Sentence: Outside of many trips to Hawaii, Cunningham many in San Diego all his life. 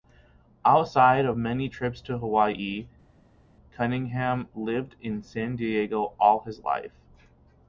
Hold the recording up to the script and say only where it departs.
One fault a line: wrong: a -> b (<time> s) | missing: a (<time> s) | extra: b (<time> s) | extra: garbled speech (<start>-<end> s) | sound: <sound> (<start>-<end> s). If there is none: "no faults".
wrong: many -> lived (4.6 s)